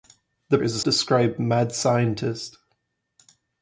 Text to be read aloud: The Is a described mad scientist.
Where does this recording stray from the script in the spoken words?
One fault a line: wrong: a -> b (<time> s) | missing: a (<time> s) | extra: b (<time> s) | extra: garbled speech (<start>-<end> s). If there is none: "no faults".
no faults